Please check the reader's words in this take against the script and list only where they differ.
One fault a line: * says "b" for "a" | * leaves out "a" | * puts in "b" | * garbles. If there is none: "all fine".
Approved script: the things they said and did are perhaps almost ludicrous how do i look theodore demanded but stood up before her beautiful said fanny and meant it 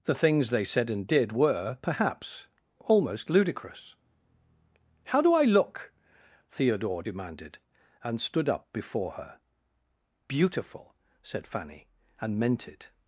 * says "were" for "are"
* says "and" for "but"